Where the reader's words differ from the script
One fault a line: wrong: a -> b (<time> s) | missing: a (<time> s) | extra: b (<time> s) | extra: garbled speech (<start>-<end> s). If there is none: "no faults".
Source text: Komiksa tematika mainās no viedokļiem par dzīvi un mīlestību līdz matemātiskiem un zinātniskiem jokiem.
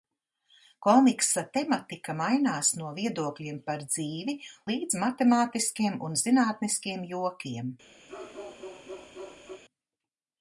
missing: un mīlestību (4.4 s)